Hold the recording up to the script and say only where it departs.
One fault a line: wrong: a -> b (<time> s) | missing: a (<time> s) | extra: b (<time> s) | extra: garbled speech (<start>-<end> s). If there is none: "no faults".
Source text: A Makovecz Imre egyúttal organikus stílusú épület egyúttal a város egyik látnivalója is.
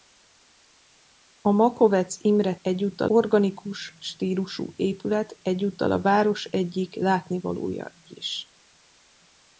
no faults